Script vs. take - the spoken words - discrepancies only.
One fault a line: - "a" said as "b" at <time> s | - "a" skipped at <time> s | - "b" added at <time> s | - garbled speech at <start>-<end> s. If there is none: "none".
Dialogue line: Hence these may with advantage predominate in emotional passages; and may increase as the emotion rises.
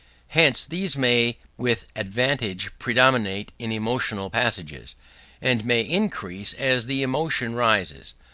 none